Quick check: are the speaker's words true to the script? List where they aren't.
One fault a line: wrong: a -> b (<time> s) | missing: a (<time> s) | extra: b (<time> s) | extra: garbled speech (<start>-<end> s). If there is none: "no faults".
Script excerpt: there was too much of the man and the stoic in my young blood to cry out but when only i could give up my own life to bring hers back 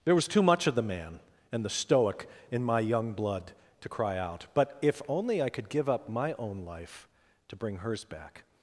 wrong: when -> if (4.8 s)